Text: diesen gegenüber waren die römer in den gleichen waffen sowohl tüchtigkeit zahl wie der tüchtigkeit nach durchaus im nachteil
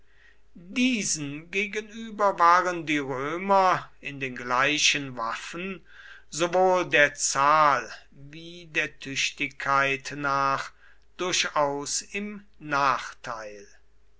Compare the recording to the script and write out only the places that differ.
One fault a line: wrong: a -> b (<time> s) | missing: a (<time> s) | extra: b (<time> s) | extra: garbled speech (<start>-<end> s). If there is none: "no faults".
wrong: tüchtigkeit -> der (6.9 s)